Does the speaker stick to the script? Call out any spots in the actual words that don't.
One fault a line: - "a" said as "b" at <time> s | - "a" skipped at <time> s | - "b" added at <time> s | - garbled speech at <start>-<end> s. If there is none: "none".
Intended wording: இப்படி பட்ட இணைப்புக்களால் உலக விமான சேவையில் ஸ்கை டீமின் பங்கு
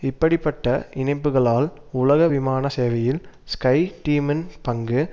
none